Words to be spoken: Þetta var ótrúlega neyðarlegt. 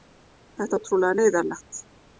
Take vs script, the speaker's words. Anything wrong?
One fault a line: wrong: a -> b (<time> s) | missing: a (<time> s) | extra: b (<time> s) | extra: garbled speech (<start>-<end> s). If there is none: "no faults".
missing: var (0.8 s)